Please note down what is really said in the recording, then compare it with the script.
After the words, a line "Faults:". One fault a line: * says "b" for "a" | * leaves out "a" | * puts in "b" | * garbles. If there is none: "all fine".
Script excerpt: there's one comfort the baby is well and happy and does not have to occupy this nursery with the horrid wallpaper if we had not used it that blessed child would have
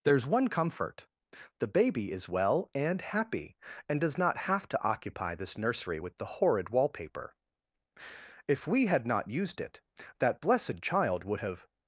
there's one comfort the baby is well and happy and does not have to occupy this nursery with the horrid wallpaper if we had not used it that blessed child would have
Faults:
all fine